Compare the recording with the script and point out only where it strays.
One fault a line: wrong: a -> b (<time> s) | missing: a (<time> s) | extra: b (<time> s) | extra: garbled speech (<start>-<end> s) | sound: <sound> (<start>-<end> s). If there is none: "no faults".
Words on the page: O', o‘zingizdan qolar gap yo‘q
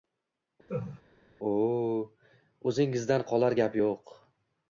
sound: laugh (0.7-1.0 s)